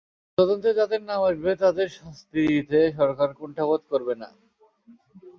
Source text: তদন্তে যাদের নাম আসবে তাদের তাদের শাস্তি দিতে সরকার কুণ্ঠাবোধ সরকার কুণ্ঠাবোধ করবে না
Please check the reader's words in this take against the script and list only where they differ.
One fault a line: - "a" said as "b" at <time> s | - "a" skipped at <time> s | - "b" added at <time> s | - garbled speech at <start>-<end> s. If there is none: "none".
- "তাদের" skipped at 1.9 s
- "সরকার কুণ্ঠাবোধ" skipped at 3.8 s